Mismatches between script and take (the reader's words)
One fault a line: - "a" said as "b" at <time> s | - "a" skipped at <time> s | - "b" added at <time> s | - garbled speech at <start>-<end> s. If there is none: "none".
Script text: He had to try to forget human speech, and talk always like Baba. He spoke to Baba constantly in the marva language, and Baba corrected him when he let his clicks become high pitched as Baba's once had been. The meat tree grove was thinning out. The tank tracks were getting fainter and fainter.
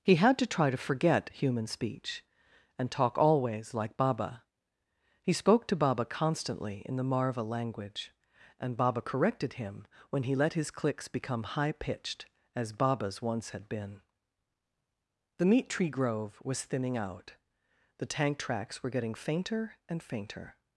none